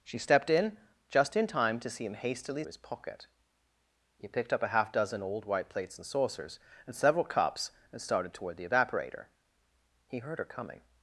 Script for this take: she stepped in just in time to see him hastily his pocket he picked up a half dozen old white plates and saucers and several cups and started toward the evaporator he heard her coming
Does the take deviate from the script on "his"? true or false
false